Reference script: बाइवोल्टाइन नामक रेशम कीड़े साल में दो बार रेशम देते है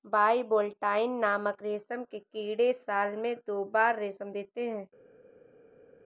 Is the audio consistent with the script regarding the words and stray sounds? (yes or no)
no